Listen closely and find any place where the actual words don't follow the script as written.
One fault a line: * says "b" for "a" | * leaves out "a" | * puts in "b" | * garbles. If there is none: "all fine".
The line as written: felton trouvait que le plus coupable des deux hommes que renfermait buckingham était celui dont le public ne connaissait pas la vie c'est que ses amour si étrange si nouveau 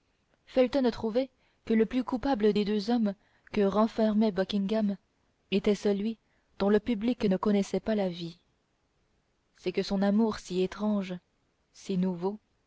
* says "son" for "ses"